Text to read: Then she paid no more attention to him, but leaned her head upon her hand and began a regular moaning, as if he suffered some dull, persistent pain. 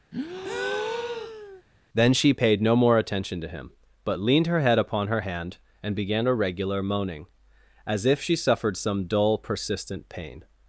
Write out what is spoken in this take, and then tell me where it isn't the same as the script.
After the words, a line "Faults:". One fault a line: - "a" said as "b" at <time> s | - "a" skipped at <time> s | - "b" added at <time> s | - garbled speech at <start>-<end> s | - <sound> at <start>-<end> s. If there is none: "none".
Then she paid no more attention to him, but leaned her head upon her hand and began a regular moaning, as if she suffered some dull, persistent pain.
Faults:
- breath at 0.1-1.6 s
- "he" said as "she" at 8.2 s